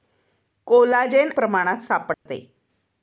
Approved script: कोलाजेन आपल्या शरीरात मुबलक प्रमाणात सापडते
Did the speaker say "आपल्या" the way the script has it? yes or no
no